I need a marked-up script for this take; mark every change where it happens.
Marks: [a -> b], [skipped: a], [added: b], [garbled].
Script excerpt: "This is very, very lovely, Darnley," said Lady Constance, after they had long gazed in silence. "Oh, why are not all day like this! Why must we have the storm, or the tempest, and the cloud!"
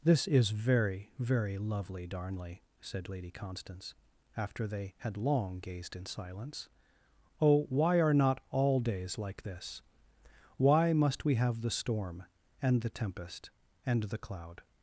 "This is very, very lovely, Darnley," said Lady Constance, after they had long gazed in silence. "Oh, why are not all [day -> days] like this! Why must we have the storm, [or -> and] the tempest, and the cloud!"